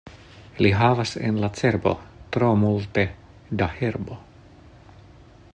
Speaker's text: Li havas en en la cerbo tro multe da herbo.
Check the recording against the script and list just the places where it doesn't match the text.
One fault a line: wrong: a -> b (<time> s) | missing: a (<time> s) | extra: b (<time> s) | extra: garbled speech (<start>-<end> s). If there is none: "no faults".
missing: en (1.4 s)